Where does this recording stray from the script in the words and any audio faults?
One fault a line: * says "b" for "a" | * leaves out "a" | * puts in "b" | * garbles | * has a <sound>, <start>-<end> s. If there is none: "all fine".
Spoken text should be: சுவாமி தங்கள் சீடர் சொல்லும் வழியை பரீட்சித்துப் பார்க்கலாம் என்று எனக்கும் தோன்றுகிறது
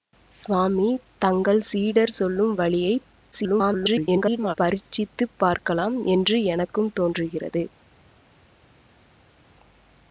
* garbles